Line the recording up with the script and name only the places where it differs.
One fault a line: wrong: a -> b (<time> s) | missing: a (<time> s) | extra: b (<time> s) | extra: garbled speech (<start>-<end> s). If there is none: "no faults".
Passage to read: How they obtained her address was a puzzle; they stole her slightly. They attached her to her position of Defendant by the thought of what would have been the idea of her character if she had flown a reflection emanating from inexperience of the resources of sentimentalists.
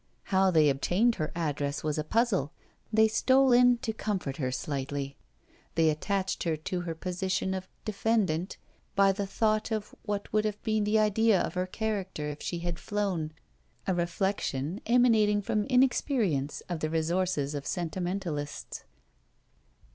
extra: in to comfort (3.5 s)